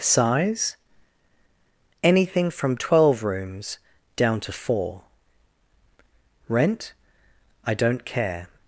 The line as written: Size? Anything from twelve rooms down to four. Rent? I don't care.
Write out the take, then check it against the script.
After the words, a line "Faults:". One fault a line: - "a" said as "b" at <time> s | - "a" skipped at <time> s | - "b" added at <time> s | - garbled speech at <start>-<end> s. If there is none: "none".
Size? Anything from twelve rooms down to four. Rent? I don't care.
Faults:
none